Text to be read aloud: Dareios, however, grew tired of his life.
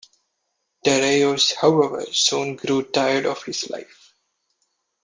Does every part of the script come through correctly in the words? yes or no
no